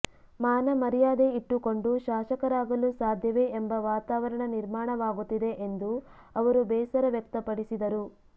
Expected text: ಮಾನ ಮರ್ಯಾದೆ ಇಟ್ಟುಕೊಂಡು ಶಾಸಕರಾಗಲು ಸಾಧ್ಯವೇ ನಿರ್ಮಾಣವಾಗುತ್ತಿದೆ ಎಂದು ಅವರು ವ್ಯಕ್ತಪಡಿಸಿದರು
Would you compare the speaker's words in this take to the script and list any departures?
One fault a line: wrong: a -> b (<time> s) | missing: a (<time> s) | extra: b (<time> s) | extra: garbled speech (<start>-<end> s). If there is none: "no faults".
extra: ಎಂಬ ವಾತಾವರಣ (3.6 s)
extra: ಬೇಸರ (6.7 s)